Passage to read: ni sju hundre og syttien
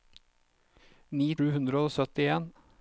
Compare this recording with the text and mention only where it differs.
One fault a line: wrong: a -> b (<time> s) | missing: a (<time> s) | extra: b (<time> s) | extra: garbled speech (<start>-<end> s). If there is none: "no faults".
no faults